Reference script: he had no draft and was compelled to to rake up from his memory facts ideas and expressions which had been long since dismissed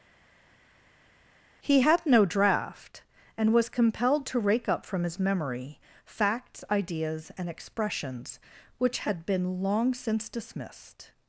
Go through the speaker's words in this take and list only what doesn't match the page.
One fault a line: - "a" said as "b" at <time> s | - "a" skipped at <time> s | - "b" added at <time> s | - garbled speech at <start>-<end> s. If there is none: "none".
- "to" skipped at 4.4 s